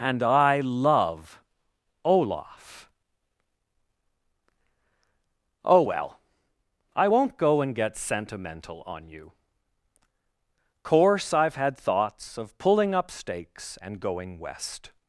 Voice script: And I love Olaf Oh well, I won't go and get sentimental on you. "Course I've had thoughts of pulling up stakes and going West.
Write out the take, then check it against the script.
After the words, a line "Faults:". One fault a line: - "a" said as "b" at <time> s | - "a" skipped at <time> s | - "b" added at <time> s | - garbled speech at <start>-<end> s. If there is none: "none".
And I love Olaf Oh well, I won't go and get sentimental on you. "Course I've had thoughts of pulling up stakes and going West.
Faults:
none